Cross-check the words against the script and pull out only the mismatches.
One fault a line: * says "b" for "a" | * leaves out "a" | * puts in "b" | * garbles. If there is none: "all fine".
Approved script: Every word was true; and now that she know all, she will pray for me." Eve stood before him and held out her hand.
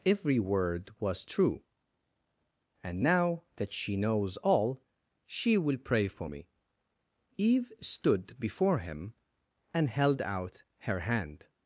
* says "knows" for "know"